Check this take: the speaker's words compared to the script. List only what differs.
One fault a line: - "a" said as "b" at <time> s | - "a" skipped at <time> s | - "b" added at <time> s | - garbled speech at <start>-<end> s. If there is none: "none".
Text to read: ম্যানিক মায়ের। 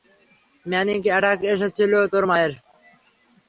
- "অ্যাটাক এসেছিল তোর" added at 1.1 s